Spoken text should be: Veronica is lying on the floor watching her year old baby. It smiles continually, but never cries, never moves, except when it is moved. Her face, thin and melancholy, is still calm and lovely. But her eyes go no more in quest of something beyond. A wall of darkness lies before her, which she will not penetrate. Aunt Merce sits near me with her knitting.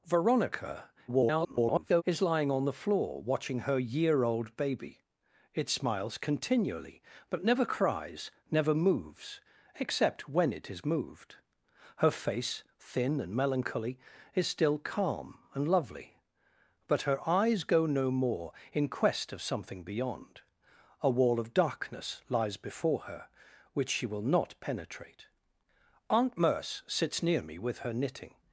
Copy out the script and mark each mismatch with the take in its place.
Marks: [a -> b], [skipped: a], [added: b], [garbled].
Veronica [garbled] is lying on the floor watching her year old baby. It smiles continually, but never cries, never moves, except when it is moved. Her face, thin and melancholy, is still calm and lovely. But her eyes go no more in quest of something beyond. A wall of darkness lies before her, which she will not penetrate. Aunt Merce sits near me with her knitting.